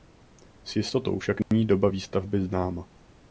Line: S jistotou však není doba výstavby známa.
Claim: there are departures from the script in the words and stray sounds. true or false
true